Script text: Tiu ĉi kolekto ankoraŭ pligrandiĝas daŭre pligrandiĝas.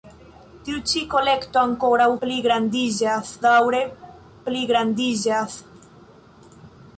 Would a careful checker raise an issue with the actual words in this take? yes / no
no